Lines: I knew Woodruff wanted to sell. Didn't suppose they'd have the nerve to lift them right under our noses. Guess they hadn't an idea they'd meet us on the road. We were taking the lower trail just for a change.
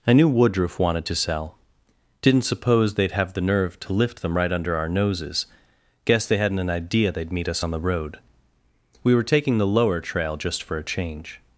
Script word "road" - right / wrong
right